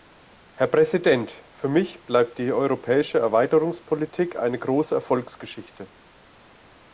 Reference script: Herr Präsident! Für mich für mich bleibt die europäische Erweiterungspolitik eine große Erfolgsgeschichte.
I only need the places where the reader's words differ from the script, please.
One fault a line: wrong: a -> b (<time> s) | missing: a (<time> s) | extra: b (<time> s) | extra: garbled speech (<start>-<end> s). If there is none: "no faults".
missing: für mich (2.0 s)